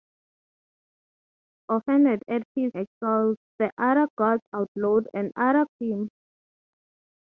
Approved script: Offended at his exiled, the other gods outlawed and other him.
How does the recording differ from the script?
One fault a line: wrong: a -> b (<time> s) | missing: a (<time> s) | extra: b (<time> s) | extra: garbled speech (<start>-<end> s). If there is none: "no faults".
no faults